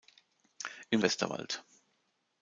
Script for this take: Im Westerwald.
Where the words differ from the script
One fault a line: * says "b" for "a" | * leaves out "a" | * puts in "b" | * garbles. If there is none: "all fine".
all fine